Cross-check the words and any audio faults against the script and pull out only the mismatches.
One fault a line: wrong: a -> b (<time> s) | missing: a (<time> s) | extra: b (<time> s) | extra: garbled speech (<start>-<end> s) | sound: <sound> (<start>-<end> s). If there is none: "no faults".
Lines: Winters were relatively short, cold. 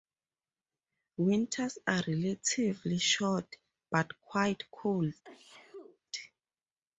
wrong: were -> are (1.9 s)
extra: but quite (3.9 s)
sound: sneeze (5.2-6.0 s)